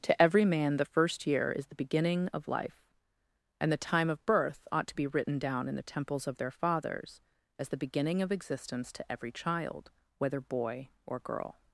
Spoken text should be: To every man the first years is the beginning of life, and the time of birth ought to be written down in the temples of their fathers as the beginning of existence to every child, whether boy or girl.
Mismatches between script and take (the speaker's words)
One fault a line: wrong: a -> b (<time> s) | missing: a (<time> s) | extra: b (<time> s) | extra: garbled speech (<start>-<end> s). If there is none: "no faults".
wrong: years -> year (1.3 s)